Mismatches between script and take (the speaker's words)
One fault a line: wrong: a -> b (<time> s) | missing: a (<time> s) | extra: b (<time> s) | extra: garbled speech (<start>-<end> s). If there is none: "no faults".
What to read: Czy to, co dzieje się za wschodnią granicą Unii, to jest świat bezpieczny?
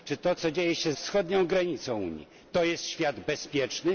missing: za (0.9 s)